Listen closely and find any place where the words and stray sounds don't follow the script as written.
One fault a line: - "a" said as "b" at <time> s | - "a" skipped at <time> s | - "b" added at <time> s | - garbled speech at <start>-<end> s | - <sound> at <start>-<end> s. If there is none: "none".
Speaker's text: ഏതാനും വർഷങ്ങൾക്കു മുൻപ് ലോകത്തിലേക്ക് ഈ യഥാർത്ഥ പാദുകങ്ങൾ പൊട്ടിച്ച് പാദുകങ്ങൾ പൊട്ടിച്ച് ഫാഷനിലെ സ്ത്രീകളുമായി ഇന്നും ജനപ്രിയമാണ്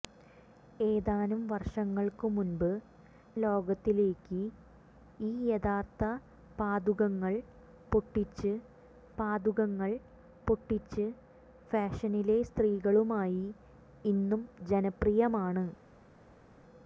none